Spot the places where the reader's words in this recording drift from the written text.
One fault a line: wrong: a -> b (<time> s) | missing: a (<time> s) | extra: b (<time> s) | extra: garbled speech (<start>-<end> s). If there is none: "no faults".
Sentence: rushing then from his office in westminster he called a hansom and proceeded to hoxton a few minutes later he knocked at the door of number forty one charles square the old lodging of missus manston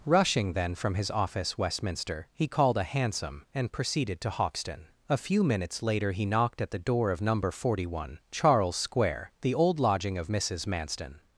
missing: in (1.6 s)